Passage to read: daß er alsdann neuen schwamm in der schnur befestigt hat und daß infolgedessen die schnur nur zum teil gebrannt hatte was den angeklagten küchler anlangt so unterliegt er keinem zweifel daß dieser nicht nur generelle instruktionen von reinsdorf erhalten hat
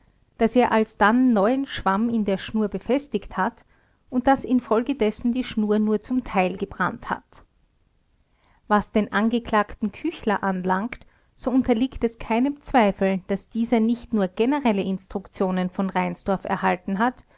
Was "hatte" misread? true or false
true